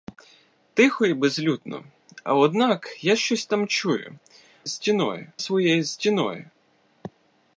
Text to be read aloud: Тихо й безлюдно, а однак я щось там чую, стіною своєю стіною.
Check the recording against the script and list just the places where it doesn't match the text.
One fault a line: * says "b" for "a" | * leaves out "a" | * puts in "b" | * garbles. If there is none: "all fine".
all fine